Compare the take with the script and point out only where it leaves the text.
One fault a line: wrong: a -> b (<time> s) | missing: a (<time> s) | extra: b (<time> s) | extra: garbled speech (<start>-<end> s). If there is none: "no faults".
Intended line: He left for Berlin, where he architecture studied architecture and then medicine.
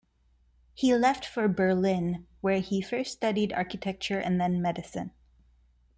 wrong: architecture -> first (2.8 s)